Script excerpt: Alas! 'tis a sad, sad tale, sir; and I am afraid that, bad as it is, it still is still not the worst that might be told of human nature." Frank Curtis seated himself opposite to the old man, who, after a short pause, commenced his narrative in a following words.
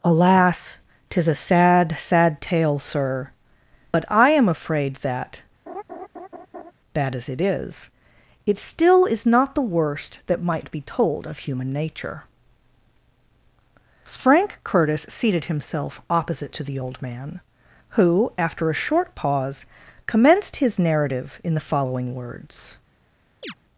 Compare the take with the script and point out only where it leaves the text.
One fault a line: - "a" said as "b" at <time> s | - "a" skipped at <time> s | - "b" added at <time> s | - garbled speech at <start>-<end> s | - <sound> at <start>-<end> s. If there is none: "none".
- "and" said as "but" at 3.9 s
- laugh at 5.7-6.7 s
- "still" skipped at 9.3 s
- "a" said as "the" at 21.5 s
- chirp at 23.4-23.5 s